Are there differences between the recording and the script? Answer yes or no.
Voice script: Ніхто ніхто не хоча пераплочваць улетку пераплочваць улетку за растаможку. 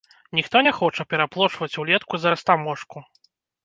yes